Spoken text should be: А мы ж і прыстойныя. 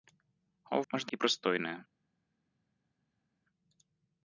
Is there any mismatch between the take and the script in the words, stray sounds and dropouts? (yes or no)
no